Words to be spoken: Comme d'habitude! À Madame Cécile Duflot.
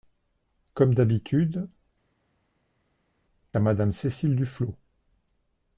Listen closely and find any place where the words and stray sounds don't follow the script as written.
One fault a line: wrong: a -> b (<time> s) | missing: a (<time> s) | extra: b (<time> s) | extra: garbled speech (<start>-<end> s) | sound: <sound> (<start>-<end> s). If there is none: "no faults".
no faults